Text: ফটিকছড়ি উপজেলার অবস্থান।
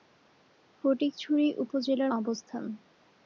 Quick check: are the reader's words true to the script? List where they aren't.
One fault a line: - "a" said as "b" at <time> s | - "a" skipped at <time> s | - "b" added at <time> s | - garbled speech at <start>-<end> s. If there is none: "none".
none